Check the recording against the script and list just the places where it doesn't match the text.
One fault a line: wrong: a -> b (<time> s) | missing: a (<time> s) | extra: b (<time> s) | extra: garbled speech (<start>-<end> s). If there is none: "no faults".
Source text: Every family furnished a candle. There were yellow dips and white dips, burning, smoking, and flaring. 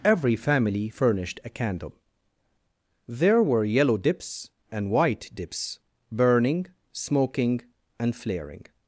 no faults